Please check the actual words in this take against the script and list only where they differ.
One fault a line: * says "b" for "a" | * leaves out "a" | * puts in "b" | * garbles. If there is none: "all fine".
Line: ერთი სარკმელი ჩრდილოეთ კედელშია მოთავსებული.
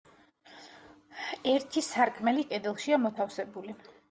* leaves out "ჩრდილოეთ"